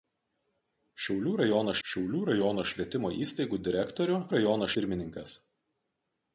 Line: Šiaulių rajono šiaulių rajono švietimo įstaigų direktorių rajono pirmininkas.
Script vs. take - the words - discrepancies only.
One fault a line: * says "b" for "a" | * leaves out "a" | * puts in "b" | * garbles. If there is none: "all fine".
all fine